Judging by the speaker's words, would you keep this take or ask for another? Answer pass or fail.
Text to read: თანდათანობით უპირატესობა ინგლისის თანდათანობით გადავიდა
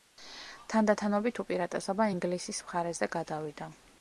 fail